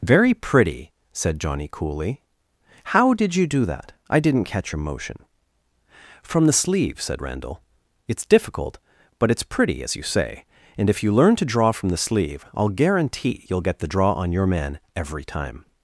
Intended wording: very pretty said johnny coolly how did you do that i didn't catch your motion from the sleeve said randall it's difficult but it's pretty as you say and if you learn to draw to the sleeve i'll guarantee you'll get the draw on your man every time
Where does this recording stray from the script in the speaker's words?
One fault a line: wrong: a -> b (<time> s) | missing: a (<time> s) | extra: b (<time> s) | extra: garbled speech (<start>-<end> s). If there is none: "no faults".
wrong: to -> from (11.7 s)